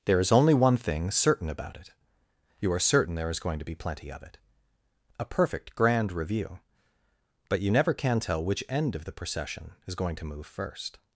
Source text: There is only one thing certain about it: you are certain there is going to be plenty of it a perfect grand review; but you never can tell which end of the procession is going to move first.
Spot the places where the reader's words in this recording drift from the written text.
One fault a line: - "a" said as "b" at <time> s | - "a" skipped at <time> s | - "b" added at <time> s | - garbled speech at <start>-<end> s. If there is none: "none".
none